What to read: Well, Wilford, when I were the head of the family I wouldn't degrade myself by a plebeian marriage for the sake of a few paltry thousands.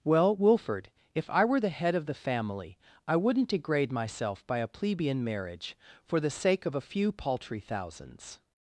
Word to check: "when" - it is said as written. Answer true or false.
false